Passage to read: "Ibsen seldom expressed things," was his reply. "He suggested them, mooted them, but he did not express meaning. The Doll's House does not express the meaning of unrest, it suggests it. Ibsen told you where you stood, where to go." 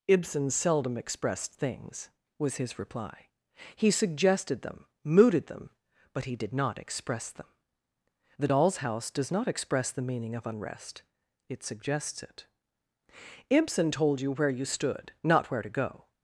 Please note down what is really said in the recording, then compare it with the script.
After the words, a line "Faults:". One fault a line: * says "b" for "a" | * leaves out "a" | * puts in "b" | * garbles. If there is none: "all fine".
"Ibsen seldom expressed things," was his reply. "He suggested them, mooted them, but he did not express them. The Doll's House does not express the meaning of unrest, it suggests it. Ibsen told you where you stood, not where to go."
Faults:
* says "them" for "meaning"
* puts in "not"